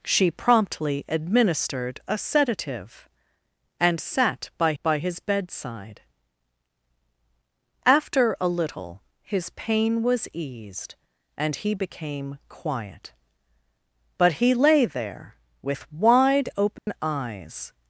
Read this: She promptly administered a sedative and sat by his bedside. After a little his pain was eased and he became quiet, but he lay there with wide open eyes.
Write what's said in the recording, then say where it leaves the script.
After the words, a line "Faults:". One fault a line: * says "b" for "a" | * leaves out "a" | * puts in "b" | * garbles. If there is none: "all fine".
She promptly administered a sedative and sat by by his bedside. After a little his pain was eased and he became quiet, but he lay there with wide open eyes.
Faults:
* puts in "by"